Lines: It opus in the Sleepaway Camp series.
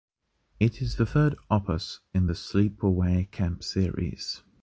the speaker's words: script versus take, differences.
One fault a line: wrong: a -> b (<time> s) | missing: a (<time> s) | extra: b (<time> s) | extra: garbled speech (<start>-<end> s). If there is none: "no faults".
extra: is the third (0.8 s)